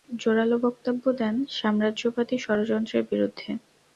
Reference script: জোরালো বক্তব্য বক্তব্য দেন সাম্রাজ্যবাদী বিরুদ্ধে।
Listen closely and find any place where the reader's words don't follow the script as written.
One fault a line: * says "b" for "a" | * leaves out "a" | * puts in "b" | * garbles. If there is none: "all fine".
* leaves out "বক্তব্য"
* puts in "ষড়যন্ত্রের"